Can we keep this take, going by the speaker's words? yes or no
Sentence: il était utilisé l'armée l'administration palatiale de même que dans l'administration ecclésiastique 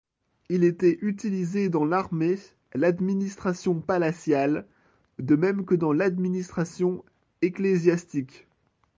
no